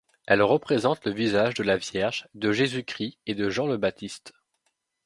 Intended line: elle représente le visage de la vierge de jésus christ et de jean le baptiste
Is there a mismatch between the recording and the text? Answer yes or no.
no